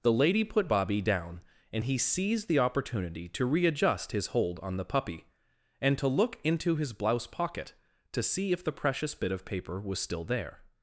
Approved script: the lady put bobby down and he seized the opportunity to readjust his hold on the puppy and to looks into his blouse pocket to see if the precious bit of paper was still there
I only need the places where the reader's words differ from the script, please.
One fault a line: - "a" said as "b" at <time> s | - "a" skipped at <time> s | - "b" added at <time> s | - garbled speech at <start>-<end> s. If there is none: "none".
- "looks" said as "look" at 6.1 s